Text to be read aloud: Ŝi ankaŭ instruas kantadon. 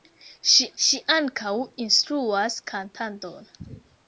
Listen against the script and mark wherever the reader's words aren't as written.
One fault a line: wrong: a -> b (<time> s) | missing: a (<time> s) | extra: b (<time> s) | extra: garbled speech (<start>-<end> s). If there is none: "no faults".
extra: ŝi (0.8 s)